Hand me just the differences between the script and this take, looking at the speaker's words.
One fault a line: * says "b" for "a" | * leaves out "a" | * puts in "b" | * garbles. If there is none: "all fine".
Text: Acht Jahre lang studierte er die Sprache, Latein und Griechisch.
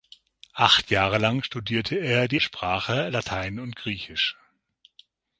all fine